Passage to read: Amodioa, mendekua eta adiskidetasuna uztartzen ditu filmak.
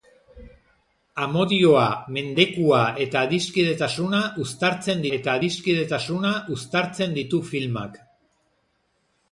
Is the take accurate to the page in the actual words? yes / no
no